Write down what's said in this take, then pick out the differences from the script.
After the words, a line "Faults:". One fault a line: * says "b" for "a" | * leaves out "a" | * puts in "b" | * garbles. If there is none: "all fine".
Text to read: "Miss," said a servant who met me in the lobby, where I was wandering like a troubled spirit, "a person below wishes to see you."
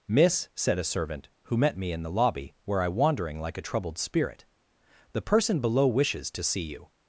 "Miss," said a servant who met me in the lobby, where I wandering like a troubled spirit, "the person below wishes to see you."
Faults:
* leaves out "was"
* says "the" for "a"